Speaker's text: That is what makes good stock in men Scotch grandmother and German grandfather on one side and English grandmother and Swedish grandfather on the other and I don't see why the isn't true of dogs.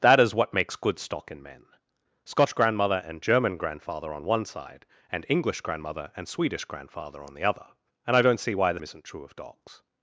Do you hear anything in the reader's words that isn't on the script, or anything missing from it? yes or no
no